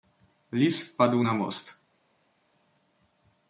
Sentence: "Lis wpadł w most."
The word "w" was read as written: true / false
false